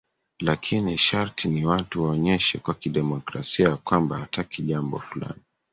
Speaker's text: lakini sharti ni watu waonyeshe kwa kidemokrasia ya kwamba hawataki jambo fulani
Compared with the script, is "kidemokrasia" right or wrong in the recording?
right